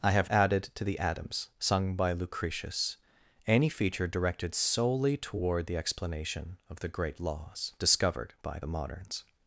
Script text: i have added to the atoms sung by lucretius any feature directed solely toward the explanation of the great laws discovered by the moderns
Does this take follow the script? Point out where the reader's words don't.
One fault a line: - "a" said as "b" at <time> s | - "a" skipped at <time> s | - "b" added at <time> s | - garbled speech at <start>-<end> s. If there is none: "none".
none